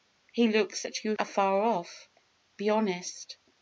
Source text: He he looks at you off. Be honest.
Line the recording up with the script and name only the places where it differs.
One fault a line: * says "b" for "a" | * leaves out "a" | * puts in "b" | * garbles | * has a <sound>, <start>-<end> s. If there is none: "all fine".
* leaves out "he"
* puts in "afar"